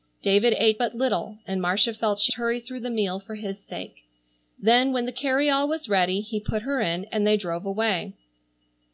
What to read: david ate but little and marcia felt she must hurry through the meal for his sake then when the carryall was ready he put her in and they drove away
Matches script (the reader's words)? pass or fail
fail